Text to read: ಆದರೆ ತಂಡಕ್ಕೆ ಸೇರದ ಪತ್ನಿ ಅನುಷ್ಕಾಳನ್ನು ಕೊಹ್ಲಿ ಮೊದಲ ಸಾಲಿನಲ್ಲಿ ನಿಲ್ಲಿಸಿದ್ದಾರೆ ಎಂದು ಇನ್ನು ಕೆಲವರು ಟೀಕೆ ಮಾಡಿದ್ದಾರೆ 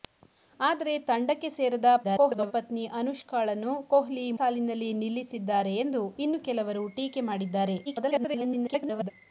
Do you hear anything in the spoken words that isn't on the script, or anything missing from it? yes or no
yes